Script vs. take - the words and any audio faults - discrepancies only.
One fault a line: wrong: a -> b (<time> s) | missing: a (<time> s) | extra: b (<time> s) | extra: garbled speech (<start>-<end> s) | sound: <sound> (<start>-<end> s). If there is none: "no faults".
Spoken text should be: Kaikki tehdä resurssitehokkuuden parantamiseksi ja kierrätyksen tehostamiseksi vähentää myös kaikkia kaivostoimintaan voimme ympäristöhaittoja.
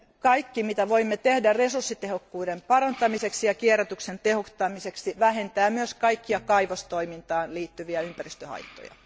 extra: mitä voimme (0.6 s)
wrong: voimme -> liittyviä (7.5 s)